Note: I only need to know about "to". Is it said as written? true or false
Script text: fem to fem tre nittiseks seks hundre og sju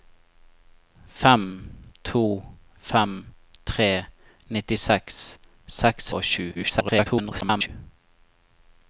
true